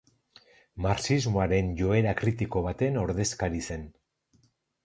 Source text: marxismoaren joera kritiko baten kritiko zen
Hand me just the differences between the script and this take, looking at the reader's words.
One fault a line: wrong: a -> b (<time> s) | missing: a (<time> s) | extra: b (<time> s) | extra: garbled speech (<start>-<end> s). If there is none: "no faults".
wrong: kritiko -> ordezkari (3.0 s)